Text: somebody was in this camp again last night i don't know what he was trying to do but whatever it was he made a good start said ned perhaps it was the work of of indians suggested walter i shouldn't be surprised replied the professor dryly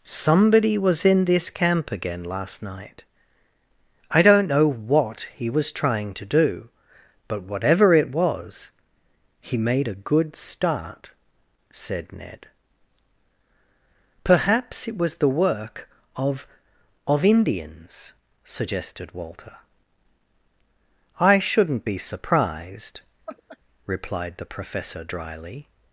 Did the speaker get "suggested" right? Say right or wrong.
right